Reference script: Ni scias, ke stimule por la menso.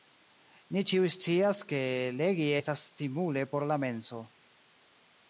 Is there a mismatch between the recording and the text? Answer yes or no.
yes